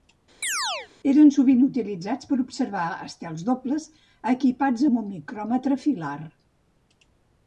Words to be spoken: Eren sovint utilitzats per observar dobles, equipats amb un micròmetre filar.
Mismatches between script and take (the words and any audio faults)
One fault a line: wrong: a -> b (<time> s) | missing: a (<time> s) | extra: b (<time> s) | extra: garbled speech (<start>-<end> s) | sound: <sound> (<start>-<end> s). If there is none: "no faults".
sound: chirp (0.4-0.9 s)
extra: estels (3.1 s)